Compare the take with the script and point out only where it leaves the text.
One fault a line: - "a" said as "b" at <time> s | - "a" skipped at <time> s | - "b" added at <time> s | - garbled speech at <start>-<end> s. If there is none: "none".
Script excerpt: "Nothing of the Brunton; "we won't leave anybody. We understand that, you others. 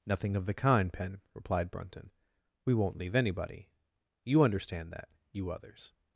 - "kind Pen replied" added at 0.5 s
- "We" said as "You" at 4.2 s